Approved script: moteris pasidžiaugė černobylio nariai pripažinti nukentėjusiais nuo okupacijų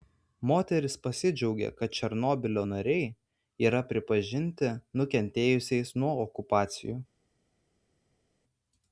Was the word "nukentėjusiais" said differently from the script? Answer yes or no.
no